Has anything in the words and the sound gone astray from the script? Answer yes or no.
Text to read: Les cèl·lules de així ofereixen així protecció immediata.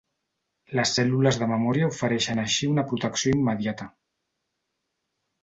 yes